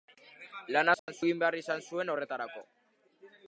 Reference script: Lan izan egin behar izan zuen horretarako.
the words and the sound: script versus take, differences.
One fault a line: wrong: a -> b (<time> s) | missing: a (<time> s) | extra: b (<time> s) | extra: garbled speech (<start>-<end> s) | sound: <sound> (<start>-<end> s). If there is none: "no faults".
sound: dropout (1.0-1.1 s)